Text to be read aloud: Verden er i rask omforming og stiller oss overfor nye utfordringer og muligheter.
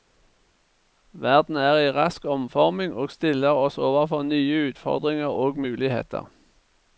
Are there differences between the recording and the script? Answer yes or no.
no